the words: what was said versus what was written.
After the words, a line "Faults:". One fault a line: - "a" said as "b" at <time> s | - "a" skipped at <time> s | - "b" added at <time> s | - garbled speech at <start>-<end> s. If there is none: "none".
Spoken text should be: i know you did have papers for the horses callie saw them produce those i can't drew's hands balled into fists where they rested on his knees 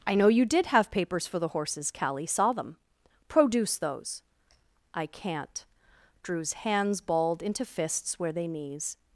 i know you did have papers for the horses callie saw them produce those i can't drew's hands balled into fists where they knees
Faults:
- "rested on his" skipped at 8.5 s